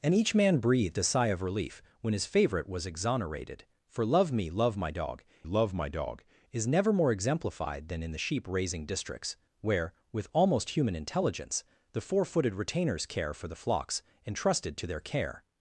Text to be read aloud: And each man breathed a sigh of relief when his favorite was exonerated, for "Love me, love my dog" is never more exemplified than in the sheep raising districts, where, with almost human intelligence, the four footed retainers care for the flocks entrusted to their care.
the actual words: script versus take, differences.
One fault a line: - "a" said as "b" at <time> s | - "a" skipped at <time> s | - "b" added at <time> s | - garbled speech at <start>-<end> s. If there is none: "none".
- "love my dog" added at 5.4 s